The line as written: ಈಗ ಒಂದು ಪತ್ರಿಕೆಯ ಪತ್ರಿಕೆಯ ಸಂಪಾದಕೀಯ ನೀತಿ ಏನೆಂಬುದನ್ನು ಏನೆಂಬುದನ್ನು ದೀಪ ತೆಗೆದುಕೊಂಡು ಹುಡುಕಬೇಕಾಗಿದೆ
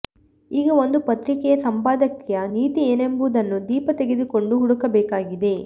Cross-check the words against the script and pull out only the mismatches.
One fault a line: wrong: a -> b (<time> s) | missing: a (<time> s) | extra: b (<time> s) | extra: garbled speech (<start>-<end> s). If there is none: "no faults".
missing: ಪತ್ರಿಕೆಯ (1.6 s)
missing: ಏನೆಂಬುದನ್ನು (3.6 s)